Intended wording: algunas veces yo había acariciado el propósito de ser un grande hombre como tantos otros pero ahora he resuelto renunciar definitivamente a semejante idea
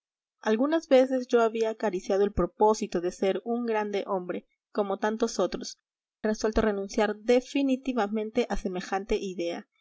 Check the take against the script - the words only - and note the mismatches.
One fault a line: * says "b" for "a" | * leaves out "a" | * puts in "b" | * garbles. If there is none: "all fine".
* leaves out "pero ahora he"